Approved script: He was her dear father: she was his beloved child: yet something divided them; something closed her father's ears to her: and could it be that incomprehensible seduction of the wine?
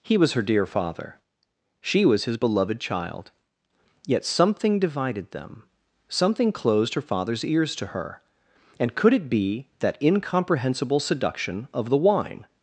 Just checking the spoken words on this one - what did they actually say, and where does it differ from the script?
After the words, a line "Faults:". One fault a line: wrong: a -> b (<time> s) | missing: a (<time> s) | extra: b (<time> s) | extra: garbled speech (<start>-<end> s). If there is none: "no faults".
He was her dear father: she was his beloved child: yet something divided them; something closed her father's ears to her: and could it be that incomprehensible seduction of the wine?
Faults:
no faults